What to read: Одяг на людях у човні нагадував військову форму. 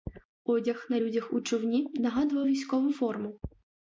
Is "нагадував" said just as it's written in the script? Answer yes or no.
yes